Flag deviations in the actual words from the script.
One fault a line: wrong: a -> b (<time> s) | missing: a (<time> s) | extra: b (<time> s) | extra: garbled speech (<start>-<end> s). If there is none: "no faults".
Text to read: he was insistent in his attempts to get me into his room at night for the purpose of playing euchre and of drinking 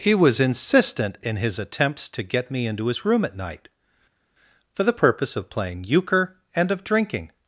no faults